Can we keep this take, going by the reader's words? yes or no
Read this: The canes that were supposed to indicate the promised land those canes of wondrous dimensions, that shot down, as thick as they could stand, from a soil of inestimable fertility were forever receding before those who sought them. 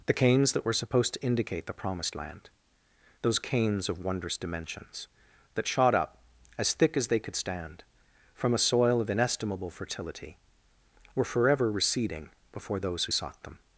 no